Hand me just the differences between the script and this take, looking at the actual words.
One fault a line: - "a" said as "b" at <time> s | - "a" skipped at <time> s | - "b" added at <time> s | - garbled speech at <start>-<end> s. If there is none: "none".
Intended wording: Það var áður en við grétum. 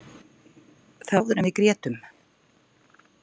- "var" skipped at 1.2 s